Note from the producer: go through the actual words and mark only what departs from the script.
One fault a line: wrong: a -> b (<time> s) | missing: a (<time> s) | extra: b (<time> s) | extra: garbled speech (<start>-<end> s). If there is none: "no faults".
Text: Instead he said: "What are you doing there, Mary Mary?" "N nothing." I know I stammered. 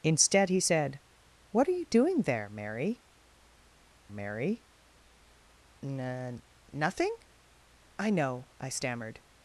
no faults